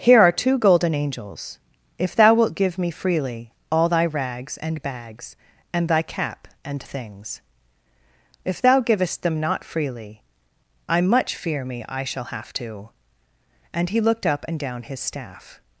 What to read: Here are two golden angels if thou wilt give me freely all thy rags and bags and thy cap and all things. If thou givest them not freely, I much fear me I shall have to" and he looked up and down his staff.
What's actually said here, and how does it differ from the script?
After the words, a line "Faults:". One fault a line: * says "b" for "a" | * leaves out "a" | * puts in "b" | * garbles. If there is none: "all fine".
Here are two golden angels if thou wilt give me freely all thy rags and bags and thy cap and things. If thou givest them not freely, I much fear me I shall have to" and he looked up and down his staff.
Faults:
* leaves out "all"